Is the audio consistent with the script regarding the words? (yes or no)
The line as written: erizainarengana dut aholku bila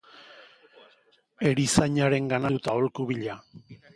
yes